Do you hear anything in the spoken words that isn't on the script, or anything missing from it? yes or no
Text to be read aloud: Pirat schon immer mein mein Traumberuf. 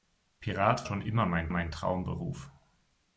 no